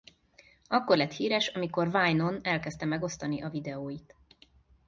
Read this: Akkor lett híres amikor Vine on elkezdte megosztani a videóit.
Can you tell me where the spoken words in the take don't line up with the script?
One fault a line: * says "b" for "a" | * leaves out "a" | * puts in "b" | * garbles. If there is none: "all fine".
all fine